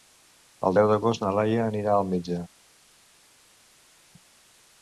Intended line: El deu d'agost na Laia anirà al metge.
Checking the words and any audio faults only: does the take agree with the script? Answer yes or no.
yes